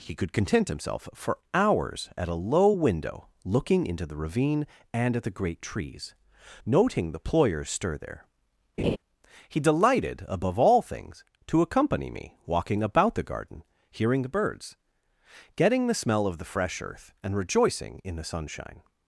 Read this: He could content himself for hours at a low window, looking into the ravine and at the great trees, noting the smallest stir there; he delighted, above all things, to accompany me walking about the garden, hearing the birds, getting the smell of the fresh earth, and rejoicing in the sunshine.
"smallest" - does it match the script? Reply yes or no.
no